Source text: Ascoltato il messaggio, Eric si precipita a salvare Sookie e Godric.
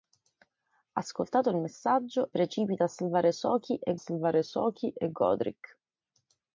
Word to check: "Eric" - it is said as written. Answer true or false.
false